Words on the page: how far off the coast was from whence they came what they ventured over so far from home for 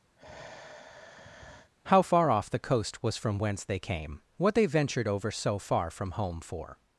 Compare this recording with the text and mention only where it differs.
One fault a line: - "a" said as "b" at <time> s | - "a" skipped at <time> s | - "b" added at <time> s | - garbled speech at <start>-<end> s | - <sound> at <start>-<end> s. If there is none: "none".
- sigh at 0.2-1.7 s